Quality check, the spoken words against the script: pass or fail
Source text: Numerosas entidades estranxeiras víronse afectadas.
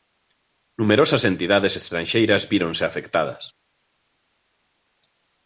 pass